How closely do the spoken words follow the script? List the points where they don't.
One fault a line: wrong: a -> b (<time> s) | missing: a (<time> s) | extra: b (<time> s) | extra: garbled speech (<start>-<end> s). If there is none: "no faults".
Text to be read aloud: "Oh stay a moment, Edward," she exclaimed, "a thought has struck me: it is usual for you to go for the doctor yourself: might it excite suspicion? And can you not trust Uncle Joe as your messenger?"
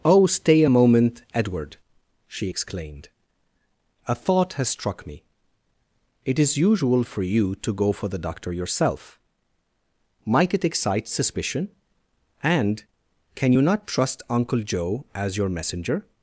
no faults